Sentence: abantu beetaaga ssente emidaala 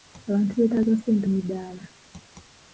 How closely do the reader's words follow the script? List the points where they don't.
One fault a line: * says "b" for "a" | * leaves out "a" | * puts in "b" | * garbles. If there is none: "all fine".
all fine